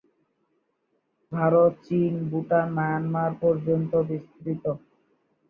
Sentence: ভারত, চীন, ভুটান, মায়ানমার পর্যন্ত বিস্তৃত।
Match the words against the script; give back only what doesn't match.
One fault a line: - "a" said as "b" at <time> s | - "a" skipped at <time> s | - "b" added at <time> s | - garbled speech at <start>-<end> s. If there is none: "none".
none